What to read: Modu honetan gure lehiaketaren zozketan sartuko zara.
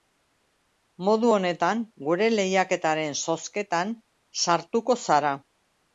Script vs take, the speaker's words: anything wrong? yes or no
no